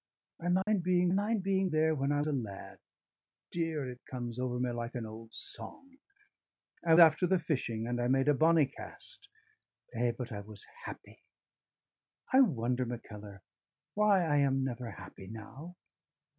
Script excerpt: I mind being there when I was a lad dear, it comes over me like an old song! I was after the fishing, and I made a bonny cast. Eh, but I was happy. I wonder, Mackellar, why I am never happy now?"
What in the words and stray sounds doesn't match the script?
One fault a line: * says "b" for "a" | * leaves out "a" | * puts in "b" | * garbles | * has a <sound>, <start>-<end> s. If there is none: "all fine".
* has a dropout, 0.6-0.7 s
* puts in "mind being"
* leaves out "was"
* leaves out "was"